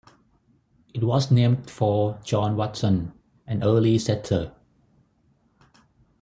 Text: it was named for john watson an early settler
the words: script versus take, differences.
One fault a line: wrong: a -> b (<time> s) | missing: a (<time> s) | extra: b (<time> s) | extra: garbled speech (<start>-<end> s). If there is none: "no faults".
no faults